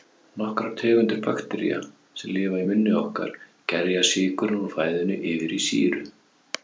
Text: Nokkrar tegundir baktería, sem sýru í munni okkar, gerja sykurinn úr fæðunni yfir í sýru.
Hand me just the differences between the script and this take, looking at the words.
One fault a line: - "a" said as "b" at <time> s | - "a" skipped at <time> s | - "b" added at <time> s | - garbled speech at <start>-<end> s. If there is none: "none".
- "sýru" said as "lifa" at 2.4 s